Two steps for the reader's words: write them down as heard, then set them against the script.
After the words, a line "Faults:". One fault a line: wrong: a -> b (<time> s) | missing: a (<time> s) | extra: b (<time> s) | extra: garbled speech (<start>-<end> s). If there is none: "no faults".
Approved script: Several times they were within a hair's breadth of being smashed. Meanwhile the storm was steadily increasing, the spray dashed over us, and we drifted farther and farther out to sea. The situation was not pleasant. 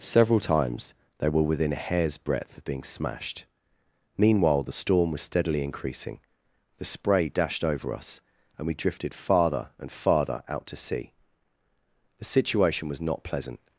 Several times they were within a hair's breadth of being smashed. Meanwhile the storm was steadily increasing, the spray dashed over us, and we drifted farther and farther out to sea. The situation was not pleasant.
Faults:
no faults